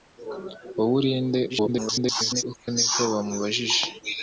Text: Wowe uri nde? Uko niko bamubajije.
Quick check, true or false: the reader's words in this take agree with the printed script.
false